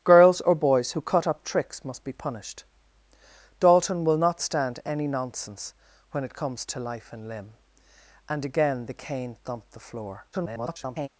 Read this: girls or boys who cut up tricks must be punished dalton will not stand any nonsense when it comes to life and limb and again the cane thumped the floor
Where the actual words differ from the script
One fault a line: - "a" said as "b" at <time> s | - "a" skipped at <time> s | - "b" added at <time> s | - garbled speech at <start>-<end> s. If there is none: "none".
- garbled speech at 10.3-11.1 s